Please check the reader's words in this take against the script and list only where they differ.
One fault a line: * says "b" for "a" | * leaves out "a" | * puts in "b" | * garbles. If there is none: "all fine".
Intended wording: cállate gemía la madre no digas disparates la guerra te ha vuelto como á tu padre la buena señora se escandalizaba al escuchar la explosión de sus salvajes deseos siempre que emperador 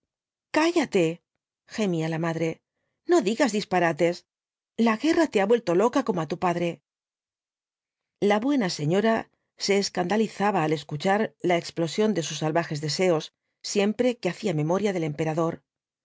* puts in "loca"
* puts in "hacía memoria del"